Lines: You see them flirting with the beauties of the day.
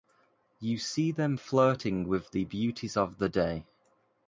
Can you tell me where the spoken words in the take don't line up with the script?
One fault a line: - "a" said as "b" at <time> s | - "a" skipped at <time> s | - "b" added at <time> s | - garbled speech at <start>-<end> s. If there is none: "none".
none